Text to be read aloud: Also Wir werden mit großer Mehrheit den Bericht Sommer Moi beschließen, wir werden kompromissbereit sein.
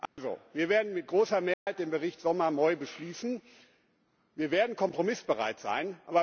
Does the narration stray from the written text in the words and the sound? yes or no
yes